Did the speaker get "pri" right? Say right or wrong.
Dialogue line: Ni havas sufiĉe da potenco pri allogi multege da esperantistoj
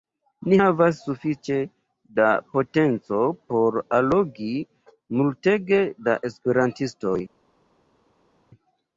wrong